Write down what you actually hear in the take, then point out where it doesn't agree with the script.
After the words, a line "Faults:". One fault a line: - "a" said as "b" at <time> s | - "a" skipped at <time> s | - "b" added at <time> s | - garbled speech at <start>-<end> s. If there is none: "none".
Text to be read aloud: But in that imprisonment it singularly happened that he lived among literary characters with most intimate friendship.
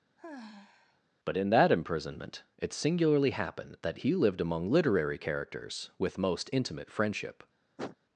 But in that imprisonment it singularly happened that he lived among literary characters with most intimate friendship.
Faults:
none